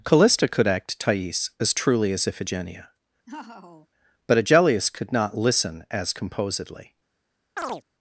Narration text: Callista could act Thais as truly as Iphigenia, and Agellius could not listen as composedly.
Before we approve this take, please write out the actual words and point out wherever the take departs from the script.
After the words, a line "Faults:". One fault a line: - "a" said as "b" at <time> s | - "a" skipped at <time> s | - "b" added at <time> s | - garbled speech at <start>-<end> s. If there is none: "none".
Callista could act Thais as truly as Iphigenia, but Agellius could not listen as composedly.
Faults:
- "and" said as "but" at 4.3 s